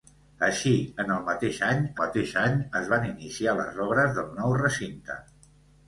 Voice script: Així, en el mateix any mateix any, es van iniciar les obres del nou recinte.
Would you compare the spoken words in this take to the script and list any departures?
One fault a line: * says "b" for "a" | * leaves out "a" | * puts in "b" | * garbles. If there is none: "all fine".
all fine